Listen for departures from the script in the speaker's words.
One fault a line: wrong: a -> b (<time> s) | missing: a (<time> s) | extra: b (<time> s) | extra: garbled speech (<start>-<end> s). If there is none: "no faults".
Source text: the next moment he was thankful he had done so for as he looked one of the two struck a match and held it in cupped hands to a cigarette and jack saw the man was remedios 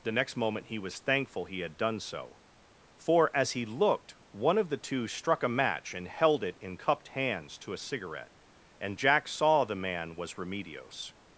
no faults